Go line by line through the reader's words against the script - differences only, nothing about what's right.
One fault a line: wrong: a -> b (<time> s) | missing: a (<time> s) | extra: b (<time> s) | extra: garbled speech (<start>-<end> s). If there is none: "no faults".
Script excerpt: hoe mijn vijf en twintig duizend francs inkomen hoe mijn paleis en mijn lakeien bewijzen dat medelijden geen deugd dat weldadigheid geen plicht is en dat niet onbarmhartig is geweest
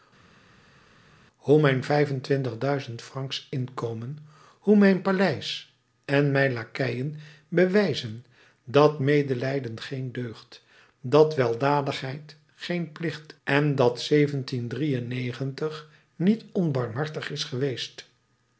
missing: is (13.3 s)